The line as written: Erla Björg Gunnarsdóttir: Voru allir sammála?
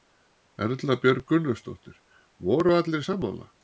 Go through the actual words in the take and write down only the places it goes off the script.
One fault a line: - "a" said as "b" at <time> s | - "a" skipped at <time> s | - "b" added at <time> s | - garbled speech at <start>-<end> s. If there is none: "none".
none